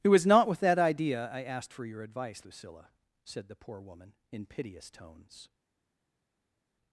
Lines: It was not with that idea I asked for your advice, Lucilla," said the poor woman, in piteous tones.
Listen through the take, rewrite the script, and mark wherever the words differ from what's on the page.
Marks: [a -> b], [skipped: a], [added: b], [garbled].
It was not with that idea I asked for your advice, Lucilla," said the poor woman, in piteous tones.